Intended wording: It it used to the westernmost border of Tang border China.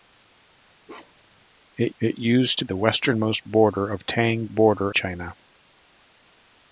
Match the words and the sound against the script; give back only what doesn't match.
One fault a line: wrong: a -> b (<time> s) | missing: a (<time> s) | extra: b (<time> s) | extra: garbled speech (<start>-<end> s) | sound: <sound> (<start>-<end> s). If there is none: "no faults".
sound: bark (0.9-1.5 s)